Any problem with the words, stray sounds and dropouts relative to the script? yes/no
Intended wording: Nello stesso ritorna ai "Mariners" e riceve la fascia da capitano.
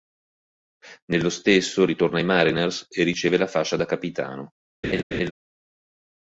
yes